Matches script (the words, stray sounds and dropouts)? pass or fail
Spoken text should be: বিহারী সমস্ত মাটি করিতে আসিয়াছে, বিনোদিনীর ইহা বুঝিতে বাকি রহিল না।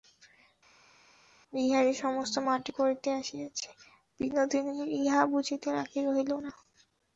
pass